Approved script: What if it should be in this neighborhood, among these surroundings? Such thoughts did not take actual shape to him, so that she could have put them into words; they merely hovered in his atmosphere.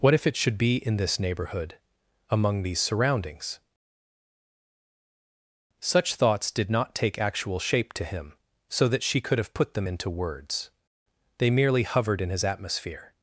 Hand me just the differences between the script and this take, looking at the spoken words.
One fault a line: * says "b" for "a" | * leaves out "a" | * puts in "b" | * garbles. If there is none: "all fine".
all fine